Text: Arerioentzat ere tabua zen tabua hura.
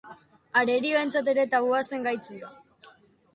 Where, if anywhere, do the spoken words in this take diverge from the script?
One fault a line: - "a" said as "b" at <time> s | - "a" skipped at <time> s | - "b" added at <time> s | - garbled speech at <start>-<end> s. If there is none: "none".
- "tabua" said as "gaitz" at 2.1 s